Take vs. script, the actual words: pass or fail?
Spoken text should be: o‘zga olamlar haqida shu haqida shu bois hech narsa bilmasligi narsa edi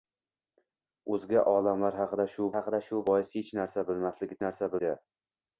pass